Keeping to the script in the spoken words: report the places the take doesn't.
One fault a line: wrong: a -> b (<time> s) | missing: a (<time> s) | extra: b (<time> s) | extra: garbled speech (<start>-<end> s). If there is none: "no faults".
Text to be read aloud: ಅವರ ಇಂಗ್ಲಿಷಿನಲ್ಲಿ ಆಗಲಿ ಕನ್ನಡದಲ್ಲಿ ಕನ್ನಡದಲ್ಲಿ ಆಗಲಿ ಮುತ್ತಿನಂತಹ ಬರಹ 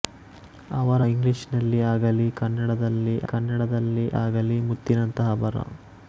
no faults